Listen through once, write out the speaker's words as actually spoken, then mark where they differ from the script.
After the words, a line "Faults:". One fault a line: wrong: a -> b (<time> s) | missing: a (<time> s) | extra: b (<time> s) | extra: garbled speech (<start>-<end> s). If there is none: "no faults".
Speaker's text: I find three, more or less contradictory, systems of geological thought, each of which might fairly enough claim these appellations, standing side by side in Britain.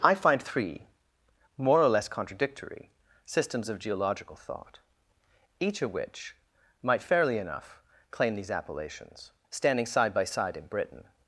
I find three, more or less contradictory, systems of geological thought, each of which might fairly enough claim these appellations, standing side by side in Britain.
Faults:
no faults